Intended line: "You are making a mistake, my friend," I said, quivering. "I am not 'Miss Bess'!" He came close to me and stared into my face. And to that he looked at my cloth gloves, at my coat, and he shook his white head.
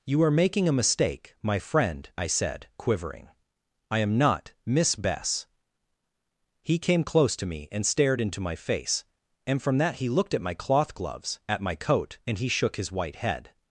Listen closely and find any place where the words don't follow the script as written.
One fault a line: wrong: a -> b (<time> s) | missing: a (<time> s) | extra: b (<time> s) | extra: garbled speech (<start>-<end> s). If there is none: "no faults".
wrong: to -> from (9.6 s)